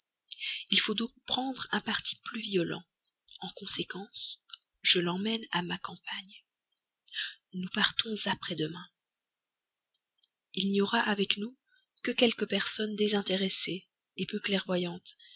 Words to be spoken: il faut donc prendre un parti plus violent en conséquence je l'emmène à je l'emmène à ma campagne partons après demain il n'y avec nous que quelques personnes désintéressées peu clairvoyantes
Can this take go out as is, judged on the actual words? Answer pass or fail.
fail